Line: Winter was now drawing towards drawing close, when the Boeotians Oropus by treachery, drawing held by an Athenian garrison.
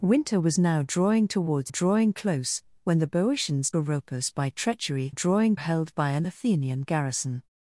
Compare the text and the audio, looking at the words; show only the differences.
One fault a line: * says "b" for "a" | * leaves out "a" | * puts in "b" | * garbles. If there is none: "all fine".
all fine